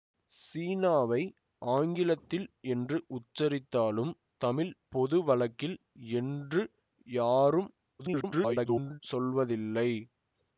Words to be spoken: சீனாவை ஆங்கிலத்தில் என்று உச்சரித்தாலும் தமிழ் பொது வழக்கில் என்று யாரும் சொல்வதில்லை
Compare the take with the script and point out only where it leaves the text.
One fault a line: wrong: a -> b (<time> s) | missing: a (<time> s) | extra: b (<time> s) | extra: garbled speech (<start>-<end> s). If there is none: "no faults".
extra: garbled speech (8.0-9.0 s)